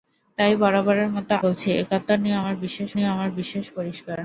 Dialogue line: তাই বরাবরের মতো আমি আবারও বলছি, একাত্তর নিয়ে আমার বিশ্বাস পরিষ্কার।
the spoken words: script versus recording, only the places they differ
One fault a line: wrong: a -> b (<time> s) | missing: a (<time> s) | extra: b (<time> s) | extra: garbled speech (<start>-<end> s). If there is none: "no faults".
wrong: আমি আবারও বলছি একাত্তর -> বলছি একাত্তর নিয়ে আমার বিশ্বাস (1.4 s)